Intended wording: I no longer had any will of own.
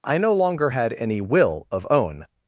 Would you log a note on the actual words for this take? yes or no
no